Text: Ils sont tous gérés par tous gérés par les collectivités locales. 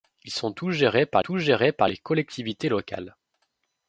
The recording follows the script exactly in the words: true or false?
true